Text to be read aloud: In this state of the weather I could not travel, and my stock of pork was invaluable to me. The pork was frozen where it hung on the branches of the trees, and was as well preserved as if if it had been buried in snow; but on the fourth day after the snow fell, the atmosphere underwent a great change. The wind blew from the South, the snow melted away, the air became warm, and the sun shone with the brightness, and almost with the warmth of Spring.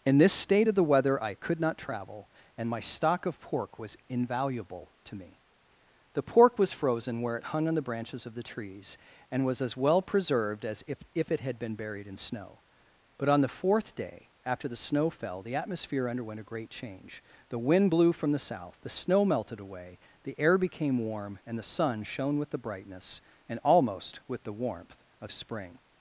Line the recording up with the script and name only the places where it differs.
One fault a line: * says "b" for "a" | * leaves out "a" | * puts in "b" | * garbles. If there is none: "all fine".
all fine